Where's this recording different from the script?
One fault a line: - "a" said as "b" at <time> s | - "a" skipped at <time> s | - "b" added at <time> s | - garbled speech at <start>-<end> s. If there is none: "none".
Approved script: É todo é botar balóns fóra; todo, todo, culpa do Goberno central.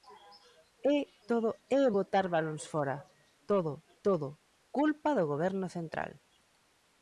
none